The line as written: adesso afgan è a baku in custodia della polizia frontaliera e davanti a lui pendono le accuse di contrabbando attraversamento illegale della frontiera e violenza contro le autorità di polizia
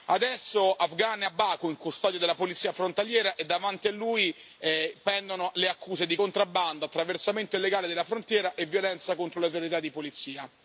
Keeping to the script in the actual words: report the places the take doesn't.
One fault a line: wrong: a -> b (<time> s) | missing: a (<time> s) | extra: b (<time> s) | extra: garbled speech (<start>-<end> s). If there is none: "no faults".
no faults